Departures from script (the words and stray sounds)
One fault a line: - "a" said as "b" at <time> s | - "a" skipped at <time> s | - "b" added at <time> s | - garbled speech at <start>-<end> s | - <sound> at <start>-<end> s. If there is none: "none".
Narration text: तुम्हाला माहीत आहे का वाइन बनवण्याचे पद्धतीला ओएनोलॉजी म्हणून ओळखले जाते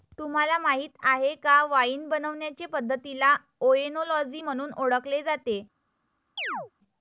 - chirp at 6.4-6.7 s